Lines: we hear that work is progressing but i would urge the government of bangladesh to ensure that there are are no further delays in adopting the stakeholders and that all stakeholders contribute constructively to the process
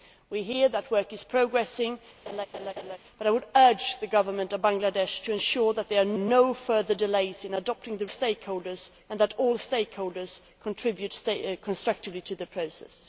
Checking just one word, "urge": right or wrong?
right